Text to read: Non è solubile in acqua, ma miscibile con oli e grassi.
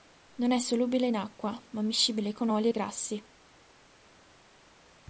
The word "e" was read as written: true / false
true